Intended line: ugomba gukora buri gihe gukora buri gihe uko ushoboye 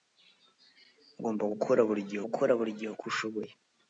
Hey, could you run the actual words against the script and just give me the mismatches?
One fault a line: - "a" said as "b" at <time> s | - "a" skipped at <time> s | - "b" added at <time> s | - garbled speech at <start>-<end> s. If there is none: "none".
none